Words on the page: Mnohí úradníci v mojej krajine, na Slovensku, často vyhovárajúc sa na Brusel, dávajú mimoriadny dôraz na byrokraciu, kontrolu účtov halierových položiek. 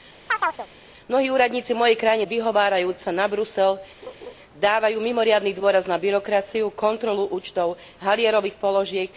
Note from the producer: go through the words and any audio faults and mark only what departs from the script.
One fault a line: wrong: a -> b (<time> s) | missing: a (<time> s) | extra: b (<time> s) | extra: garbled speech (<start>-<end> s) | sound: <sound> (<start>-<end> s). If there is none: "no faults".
sound: chirp (0.3-0.7 s)
missing: na Slovensku často (2.2 s)
sound: laugh (4.0-4.3 s)